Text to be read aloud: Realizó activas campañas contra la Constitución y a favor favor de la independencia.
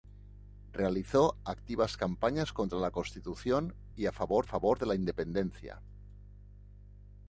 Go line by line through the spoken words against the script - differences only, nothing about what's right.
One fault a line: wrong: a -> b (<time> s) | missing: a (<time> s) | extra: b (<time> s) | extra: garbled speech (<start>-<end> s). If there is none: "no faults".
no faults